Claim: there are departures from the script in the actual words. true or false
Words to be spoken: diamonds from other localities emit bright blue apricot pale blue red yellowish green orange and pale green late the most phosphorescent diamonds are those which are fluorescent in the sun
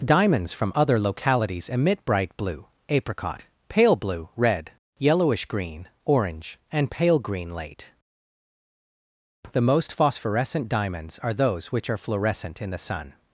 false